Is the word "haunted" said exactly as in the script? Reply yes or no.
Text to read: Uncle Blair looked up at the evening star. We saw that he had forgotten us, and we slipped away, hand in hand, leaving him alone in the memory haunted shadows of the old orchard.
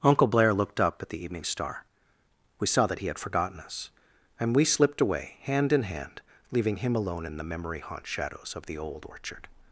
no